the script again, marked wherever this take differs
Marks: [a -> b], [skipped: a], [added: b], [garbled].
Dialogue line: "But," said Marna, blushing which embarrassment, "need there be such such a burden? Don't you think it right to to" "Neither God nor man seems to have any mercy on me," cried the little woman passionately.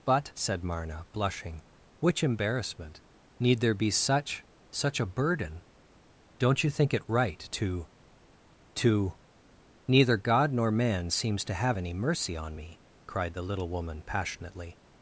"But," said Marna, blushing which embarrassment, "need there be such such a burden? Don't you think it right to to" "Neither God nor man seems to have any mercy on me," cried the little woman passionately.